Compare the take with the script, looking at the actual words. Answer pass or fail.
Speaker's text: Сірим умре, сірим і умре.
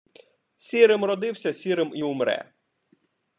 fail